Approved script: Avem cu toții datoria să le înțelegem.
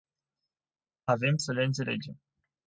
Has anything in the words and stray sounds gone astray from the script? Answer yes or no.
yes